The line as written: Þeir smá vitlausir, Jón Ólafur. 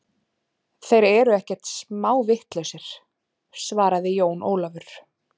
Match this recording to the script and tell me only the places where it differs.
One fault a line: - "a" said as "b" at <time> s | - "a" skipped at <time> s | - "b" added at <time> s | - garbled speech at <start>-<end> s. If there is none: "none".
- "eru ekkert" added at 1.1 s
- "svaraði" added at 3.6 s